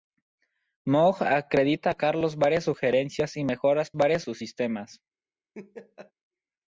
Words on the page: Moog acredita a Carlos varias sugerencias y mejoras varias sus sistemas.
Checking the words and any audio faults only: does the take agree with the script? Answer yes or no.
no